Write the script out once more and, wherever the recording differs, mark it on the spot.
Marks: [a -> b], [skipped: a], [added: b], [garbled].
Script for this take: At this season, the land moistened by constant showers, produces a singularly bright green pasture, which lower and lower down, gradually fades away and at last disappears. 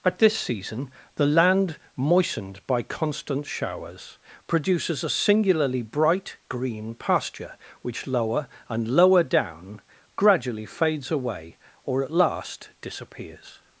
At this season, the land moistened by constant showers, produces a singularly bright green pasture, which lower and lower down, gradually fades away [and -> or] at last disappears.